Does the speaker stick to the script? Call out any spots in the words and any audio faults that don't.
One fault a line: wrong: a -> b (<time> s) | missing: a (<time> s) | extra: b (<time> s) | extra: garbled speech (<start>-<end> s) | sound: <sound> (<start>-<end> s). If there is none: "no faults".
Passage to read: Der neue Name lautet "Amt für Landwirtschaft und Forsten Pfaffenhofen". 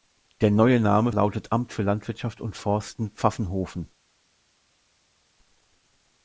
no faults